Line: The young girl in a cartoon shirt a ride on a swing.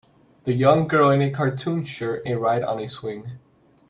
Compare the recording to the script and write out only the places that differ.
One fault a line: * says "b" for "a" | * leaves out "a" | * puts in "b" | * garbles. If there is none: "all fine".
all fine